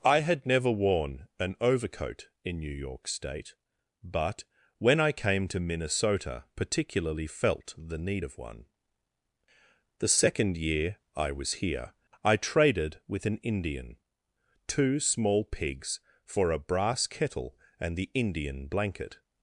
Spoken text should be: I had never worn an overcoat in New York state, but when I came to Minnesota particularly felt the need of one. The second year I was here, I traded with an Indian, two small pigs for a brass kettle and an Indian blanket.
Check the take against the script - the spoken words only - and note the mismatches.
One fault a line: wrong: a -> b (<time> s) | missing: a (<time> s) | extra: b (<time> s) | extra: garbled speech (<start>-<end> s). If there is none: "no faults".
wrong: an -> the (18.0 s)